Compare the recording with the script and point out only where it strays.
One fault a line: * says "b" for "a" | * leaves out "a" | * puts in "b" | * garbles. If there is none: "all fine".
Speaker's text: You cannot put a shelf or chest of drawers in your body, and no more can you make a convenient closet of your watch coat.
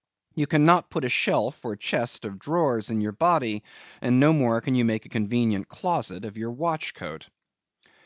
all fine